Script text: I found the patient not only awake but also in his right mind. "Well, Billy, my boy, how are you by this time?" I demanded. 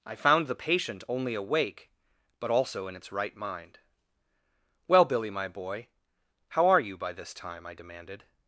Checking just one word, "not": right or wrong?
wrong